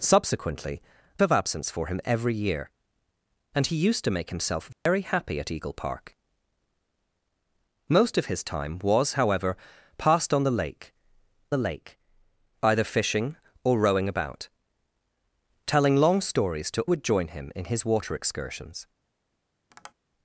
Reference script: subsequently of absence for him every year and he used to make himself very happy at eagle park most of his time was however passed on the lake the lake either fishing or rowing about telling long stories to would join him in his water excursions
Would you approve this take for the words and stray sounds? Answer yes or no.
no